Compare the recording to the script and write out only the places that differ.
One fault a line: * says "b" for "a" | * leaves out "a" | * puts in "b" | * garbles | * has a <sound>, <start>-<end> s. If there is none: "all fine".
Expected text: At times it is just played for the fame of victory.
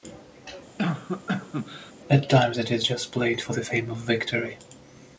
* has a cough, 0.8-1.9 s